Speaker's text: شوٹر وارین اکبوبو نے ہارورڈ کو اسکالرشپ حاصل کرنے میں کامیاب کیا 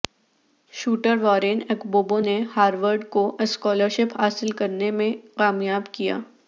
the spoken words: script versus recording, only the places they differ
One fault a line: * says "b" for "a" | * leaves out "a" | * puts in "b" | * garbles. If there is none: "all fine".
all fine